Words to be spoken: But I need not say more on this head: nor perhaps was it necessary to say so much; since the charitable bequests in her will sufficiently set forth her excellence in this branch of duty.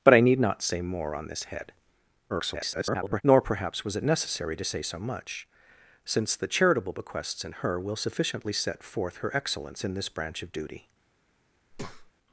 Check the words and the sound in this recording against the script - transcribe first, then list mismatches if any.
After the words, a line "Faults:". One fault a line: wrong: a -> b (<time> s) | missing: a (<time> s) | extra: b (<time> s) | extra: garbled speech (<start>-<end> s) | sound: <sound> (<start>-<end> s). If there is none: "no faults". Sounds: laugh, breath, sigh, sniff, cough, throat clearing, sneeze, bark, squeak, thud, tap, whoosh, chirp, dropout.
But I need not say more on this head: [garbled] nor perhaps was it necessary to say so much; since the charitable bequests in her will sufficiently set forth her excellence in this branch of duty.
Faults:
extra: garbled speech (2.3-3.2 s)
sound: breath (11.7-12.1 s)